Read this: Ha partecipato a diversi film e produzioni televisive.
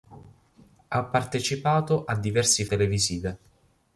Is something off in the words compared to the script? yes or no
yes